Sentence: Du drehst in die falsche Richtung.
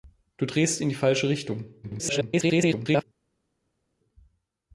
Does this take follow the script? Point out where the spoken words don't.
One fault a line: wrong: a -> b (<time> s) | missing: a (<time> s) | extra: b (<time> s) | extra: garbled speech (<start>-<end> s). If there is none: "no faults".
extra: garbled speech (1.8-3.0 s)